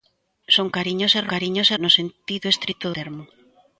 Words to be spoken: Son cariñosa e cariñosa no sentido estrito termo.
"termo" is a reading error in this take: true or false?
false